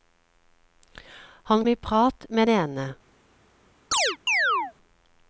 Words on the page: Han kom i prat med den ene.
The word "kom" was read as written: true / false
false